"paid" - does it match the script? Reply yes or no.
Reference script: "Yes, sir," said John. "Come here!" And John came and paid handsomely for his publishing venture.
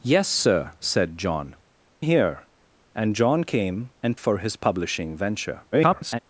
no